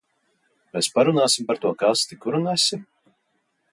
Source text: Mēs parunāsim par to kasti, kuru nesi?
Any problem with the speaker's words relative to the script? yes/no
no